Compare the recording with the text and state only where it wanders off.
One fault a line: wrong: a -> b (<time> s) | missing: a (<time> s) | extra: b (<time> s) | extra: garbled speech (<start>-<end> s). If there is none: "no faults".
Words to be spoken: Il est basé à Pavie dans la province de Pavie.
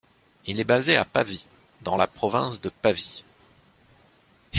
no faults